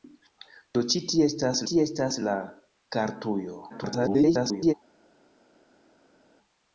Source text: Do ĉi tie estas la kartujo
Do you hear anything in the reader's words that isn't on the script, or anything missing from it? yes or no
yes